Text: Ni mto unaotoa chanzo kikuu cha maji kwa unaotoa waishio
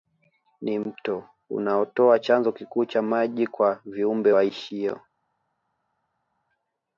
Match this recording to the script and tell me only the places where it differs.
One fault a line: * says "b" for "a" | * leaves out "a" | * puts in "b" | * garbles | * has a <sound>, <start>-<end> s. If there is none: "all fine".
* says "viumbe" for "unaotoa"